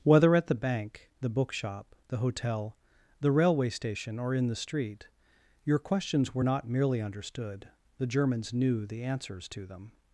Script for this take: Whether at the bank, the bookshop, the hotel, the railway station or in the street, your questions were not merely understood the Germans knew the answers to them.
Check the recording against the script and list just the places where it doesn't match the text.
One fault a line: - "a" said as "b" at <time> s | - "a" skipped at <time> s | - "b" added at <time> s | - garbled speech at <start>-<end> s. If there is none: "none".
none